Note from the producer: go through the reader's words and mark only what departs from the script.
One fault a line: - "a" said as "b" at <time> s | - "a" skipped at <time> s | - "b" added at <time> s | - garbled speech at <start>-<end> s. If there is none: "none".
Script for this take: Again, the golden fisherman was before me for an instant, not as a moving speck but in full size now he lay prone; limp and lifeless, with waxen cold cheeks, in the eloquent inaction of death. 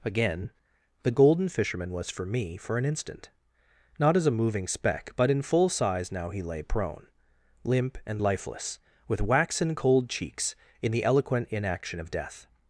- "before" said as "for" at 2.1 s